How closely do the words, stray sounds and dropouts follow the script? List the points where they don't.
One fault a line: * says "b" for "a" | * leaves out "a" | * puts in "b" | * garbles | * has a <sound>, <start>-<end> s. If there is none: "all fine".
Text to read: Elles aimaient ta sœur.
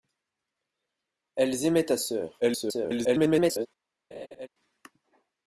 * garbles
* has a laugh, 4.1-4.5 s